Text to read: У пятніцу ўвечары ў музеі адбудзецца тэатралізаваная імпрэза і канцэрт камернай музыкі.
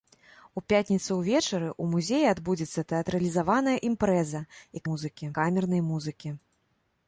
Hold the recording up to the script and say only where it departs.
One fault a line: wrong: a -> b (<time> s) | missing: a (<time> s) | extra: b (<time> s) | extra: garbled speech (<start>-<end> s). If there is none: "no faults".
wrong: канцэрт -> музыкі (4.9 s)